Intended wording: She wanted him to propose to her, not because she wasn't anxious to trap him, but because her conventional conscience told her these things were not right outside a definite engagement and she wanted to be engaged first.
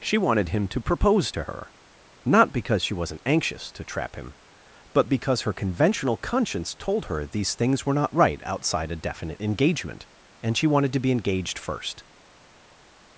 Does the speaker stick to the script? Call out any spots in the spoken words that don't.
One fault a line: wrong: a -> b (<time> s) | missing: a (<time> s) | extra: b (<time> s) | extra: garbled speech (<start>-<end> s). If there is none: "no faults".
no faults